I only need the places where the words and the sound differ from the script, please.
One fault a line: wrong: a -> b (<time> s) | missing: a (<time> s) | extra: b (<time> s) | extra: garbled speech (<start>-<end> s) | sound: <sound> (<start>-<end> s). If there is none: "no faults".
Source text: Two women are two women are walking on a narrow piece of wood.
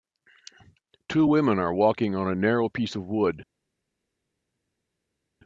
missing: two women are (1.7 s)